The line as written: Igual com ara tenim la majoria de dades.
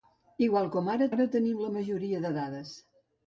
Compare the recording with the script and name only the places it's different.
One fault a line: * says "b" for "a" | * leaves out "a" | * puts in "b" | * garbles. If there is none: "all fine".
* puts in "ara"